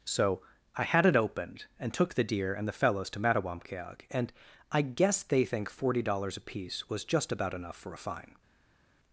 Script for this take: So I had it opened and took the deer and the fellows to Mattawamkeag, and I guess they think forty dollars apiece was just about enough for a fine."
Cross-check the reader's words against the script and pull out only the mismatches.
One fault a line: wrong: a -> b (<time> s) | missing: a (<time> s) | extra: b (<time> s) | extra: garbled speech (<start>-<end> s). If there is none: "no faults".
no faults